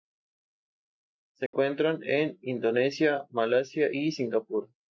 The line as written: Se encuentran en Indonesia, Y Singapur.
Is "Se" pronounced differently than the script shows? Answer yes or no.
no